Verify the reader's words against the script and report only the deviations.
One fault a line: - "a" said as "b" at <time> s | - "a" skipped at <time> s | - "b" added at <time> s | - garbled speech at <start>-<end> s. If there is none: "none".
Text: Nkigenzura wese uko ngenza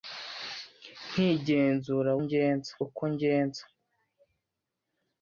- "wese" said as "ngenza" at 2.2 s